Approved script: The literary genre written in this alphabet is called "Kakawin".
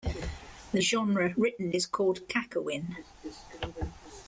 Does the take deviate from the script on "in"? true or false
true